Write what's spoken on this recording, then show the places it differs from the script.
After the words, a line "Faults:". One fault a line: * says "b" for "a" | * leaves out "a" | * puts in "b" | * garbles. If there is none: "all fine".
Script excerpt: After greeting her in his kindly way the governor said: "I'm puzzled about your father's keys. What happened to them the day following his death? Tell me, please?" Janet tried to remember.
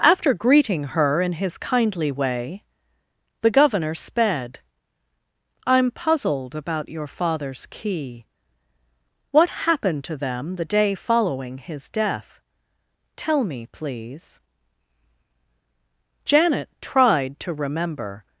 After greeting her in his kindly way the governor sped: "I'm puzzled about your father's key. What happened to them the day following his death? Tell me, please?" Janet tried to remember.
Faults:
* says "sped" for "said"
* says "key" for "keys"